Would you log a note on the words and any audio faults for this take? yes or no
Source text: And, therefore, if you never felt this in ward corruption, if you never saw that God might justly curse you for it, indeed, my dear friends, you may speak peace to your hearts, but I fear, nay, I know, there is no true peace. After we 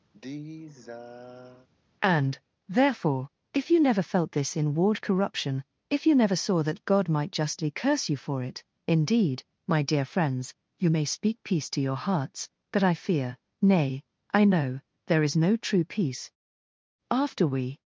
yes